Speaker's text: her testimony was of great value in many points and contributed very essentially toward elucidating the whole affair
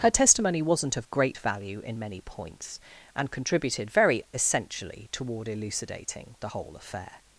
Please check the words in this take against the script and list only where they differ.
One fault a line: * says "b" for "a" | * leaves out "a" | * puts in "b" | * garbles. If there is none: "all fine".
* says "wasn't" for "was"